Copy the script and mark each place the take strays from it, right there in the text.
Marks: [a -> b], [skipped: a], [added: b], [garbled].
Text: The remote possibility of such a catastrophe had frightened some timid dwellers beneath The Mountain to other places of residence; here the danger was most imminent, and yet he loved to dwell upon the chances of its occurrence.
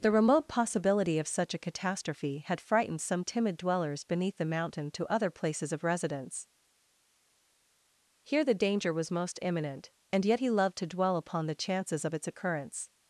The remote possibility of such a catastrophe had frightened some timid dwellers beneath The Mountain to other places of residence; here the danger was most imminent, and yet he loved to dwell upon the chances of its occurrence.